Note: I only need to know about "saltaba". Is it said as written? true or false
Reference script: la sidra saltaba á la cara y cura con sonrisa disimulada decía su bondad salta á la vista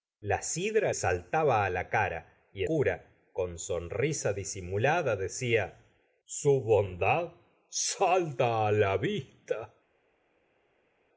true